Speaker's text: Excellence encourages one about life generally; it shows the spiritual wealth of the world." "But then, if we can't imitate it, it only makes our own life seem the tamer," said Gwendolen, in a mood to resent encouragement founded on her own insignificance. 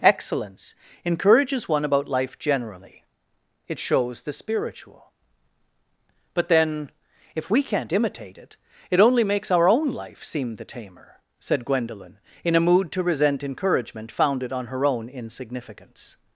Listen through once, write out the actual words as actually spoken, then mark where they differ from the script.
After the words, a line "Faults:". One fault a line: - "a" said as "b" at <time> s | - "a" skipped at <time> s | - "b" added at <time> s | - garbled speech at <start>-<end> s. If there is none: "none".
Excellence encourages one about life generally; it shows the spiritual." "But then, if we can't imitate it, it only makes our own life seem the tamer," said Gwendolen, in a mood to resent encouragement founded on her own insignificance.
Faults:
- "wealth of the world" skipped at 5.1 s